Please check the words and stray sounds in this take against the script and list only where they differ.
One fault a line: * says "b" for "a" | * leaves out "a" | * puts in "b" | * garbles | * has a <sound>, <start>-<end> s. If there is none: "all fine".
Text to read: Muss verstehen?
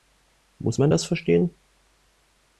* puts in "man das"